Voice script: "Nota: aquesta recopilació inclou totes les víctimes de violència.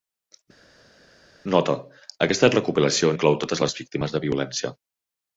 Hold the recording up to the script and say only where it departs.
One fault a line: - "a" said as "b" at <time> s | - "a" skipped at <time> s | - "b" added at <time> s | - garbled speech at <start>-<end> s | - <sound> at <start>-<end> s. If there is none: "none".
none